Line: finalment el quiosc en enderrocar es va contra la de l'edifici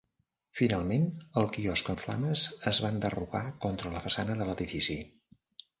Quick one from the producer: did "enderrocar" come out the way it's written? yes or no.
no